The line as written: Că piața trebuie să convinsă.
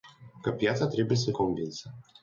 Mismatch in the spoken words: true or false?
false